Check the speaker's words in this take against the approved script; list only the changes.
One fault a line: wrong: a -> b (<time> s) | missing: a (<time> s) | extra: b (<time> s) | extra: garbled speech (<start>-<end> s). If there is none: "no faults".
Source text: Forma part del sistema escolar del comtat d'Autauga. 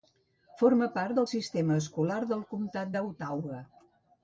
no faults